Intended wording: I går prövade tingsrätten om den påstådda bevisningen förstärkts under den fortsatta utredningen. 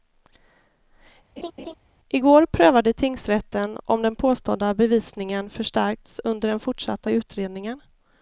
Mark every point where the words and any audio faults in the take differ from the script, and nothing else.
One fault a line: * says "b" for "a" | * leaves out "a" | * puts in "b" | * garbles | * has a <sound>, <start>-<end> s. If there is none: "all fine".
* has a laugh, 1.4-1.7 s